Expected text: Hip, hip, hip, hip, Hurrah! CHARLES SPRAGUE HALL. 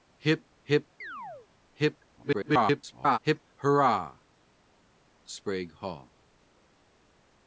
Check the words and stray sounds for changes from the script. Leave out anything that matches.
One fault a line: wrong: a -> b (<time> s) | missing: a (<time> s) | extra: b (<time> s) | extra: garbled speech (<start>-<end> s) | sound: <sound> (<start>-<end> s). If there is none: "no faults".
sound: chirp (1.0-1.5 s)
extra: garbled speech (2.2-3.2 s)
missing: CHARLES (4.2 s)